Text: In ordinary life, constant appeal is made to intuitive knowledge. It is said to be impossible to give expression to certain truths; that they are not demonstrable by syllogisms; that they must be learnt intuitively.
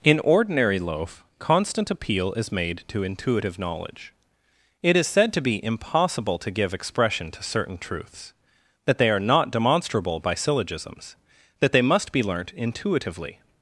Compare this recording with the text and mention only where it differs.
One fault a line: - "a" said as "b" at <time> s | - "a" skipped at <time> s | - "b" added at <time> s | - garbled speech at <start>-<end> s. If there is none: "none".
- "life" said as "loaf" at 0.8 s